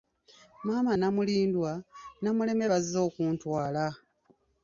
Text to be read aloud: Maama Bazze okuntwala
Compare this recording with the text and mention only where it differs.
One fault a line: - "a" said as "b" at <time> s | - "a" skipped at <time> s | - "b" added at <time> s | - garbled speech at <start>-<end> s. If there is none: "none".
- "Namulindwa Namuleme" added at 0.9 s